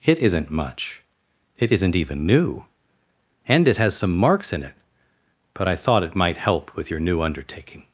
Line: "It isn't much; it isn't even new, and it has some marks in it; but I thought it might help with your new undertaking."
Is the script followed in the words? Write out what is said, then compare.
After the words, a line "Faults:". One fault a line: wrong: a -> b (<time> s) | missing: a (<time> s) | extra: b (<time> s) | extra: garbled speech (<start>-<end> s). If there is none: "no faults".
"It isn't much; it isn't even new, and it has some marks in it; but I thought it might help with your new undertaking."
Faults:
no faults